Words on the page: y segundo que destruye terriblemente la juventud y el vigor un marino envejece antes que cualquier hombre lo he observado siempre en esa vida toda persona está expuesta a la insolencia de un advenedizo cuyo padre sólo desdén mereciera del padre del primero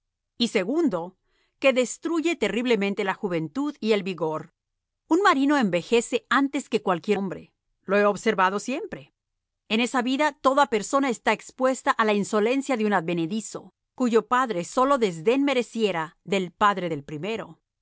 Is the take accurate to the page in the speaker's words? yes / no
yes